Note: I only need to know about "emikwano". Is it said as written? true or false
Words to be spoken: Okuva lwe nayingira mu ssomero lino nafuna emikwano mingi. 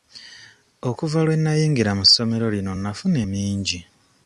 false